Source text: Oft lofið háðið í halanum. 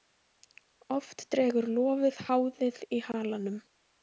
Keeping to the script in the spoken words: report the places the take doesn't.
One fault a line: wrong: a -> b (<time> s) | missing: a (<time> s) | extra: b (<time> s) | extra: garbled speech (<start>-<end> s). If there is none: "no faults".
extra: dregur (1.4 s)